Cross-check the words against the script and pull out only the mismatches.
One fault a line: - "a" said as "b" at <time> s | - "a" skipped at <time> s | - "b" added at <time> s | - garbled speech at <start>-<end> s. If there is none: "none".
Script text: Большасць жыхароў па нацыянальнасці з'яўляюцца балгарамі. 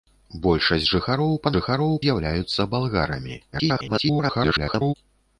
- "нацыянальнасці" said as "жыхароў" at 1.5 s
- garbled speech at 3.5-4.9 s